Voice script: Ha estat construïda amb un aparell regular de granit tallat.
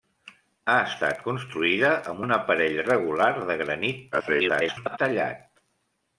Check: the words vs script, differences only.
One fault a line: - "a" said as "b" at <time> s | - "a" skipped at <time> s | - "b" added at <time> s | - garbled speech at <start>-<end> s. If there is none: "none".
- garbled speech at 4.1-5.0 s